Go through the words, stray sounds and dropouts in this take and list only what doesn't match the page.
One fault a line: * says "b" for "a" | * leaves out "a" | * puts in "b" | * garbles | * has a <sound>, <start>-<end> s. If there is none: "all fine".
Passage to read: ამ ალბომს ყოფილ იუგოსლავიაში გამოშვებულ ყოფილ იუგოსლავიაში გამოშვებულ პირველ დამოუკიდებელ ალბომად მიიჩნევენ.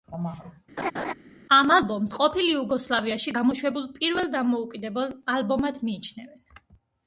* has a laugh, 0.8-1.1 s
* leaves out "ყოფილ იუგოსლავიაში გამოშვებულ"